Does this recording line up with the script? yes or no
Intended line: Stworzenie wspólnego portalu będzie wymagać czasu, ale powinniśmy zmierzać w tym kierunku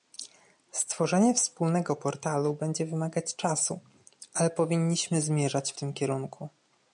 yes